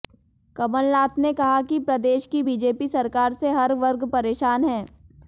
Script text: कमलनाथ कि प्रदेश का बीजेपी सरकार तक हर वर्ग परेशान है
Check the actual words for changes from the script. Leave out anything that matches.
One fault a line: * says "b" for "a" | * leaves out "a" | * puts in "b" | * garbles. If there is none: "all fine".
* puts in "ने कहा"
* says "की" for "का"
* says "से" for "तक"